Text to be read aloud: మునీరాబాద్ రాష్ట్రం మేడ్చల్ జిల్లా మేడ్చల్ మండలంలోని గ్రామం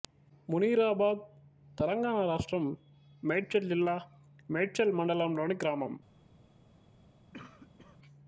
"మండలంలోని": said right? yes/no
yes